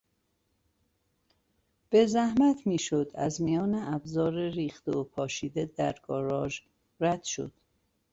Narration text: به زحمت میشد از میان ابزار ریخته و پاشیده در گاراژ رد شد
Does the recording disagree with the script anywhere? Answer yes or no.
no